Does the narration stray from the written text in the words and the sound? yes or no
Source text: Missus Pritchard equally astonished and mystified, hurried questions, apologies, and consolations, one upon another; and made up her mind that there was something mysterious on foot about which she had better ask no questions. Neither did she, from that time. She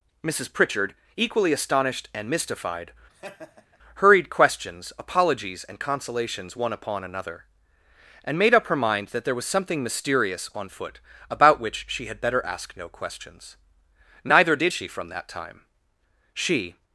yes